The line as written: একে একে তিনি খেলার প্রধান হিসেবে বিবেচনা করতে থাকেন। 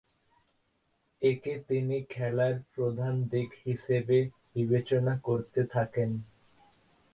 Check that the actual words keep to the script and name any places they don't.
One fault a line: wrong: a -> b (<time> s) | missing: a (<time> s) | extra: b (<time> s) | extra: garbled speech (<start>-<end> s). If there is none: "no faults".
missing: একে (1.5 s)
extra: দিক (3.3 s)